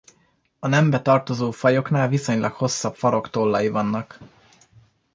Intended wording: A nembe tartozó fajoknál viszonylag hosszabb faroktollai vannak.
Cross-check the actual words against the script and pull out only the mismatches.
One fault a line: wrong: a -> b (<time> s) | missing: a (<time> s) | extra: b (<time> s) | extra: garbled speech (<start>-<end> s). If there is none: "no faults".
no faults